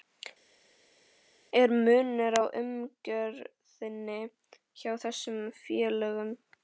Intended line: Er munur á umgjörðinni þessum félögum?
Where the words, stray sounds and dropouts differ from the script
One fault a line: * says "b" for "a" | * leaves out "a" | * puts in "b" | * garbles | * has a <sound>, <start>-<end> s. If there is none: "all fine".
* puts in "hjá"